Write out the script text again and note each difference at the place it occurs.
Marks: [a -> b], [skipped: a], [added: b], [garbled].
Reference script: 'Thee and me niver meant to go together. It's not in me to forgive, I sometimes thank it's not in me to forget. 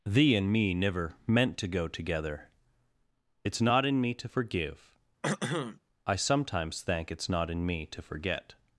'Thee and me niver meant to go together. It's not in me to forgive, I sometimes thank it's not in me to forget.